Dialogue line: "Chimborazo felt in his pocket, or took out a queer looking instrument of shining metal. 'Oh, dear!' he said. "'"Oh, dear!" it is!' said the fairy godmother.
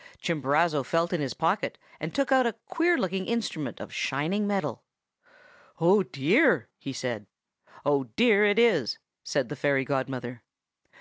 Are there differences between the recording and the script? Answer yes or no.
yes